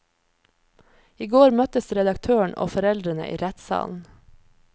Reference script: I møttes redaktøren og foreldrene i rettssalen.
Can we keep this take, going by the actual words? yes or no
no